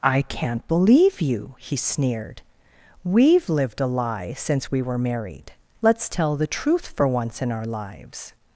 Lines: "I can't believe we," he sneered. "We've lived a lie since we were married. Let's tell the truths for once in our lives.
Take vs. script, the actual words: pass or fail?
fail